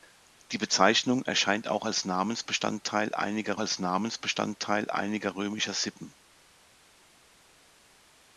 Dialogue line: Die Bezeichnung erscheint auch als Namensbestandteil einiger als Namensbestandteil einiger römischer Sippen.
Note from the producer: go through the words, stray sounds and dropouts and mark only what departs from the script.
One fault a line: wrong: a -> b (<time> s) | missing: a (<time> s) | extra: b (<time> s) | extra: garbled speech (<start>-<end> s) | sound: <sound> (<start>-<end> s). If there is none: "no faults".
no faults